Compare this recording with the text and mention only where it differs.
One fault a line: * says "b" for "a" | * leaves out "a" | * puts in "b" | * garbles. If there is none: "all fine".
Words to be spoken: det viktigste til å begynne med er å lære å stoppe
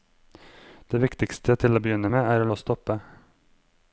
* leaves out "lære"